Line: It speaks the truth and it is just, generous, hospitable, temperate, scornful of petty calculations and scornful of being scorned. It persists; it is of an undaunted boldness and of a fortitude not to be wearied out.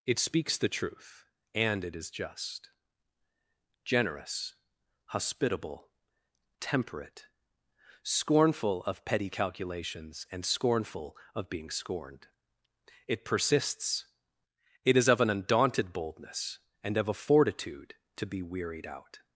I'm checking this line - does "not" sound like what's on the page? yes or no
no